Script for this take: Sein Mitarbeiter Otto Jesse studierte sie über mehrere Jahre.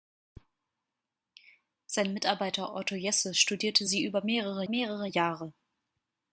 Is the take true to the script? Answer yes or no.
no